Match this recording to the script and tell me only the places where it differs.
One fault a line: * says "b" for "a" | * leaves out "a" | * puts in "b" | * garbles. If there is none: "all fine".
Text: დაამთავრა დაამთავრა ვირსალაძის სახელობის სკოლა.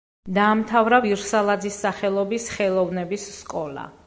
* leaves out "დაამთავრა"
* puts in "ხელოვნების"